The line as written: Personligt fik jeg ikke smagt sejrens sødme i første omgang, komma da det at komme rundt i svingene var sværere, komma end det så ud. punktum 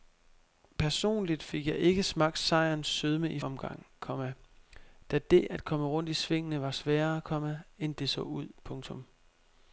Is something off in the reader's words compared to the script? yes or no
yes